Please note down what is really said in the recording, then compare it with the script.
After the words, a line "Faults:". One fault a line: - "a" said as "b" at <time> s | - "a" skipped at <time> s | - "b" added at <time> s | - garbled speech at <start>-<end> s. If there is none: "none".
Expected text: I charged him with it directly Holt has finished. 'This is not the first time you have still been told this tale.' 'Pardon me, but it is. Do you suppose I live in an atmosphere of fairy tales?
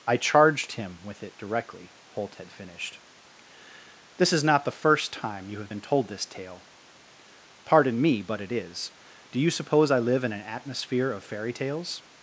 I charged him with it directly Holt had finished. 'This is not the first time you have been told this tale.' 'Pardon me, but it is. Do you suppose I live in an atmosphere of fairy tales?
Faults:
- "has" said as "had" at 2.4 s
- "still" skipped at 5.7 s